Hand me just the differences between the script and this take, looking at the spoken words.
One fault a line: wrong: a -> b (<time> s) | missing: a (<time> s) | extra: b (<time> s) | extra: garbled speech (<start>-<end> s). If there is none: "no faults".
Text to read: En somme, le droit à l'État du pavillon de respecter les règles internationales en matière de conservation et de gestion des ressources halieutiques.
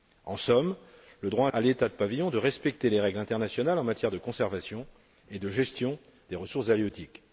no faults